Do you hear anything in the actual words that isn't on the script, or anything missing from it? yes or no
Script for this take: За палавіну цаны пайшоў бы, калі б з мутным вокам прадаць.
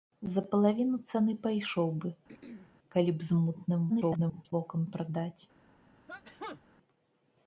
yes